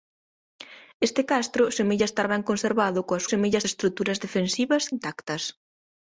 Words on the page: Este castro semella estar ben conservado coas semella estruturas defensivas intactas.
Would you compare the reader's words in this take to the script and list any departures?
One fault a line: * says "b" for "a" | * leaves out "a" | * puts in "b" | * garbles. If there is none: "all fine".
all fine